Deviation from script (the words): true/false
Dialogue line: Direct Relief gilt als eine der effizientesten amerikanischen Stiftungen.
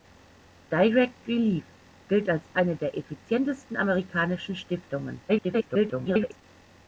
true